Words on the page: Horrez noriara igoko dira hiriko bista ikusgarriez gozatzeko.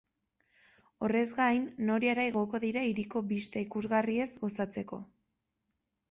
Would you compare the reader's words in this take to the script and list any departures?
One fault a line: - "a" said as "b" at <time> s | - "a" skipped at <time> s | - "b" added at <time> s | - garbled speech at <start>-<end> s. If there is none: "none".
- "gain" added at 1.4 s